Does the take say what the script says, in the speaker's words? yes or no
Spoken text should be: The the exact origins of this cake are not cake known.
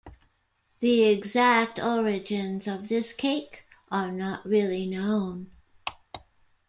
no